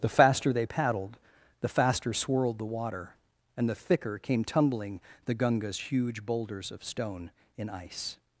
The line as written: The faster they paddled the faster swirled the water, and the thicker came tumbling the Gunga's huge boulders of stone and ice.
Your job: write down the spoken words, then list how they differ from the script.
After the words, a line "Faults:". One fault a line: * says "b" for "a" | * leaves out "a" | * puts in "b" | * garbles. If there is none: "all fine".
The faster they paddled the faster swirled the water, and the thicker came tumbling the Gunga's huge boulders of stone in ice.
Faults:
* says "in" for "and"